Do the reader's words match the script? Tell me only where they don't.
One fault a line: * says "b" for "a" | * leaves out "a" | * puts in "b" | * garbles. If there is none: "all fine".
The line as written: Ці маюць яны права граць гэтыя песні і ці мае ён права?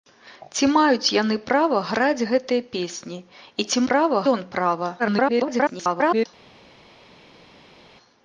* says "права" for "мае"
* garbles